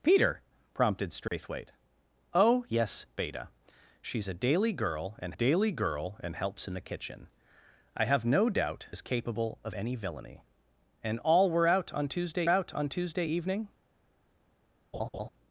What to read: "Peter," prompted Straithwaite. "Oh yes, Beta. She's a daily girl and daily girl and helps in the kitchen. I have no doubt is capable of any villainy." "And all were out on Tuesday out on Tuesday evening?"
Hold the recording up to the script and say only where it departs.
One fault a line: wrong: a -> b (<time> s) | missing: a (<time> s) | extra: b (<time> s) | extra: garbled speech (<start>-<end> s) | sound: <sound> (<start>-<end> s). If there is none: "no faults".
sound: dropout (1.3-1.3 s)
sound: laugh (14.9-15.3 s)